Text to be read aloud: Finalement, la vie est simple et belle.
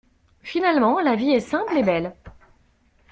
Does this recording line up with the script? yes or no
yes